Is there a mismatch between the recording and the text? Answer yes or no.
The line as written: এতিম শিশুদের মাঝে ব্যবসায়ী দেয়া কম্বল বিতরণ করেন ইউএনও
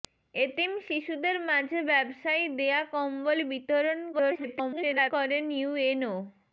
yes